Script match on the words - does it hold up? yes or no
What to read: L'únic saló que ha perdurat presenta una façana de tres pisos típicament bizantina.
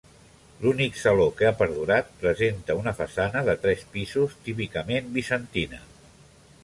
yes